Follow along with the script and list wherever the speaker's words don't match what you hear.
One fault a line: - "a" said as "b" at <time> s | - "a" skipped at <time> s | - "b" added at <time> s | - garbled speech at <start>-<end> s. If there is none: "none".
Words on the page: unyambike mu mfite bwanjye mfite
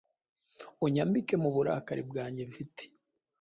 - "mfite" said as "burakari" at 1.6 s